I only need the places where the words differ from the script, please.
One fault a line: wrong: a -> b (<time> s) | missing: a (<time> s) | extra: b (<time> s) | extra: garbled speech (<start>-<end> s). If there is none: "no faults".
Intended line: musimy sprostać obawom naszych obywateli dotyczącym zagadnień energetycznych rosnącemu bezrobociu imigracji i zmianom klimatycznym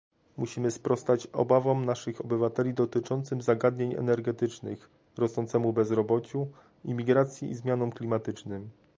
no faults